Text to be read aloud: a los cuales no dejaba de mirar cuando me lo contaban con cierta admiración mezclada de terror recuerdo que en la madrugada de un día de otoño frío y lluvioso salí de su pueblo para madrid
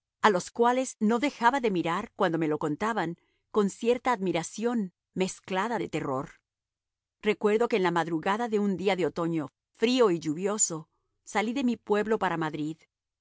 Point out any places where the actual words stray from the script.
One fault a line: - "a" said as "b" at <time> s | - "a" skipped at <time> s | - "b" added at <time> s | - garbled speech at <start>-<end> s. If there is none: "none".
- "su" said as "mi" at 11.6 s